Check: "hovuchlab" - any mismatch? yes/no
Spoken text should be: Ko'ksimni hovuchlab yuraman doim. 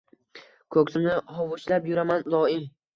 no